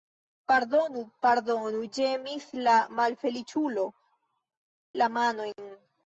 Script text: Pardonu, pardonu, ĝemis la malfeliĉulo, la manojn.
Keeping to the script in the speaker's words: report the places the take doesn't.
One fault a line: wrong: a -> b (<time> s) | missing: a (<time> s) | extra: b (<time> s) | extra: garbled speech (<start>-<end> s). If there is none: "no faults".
no faults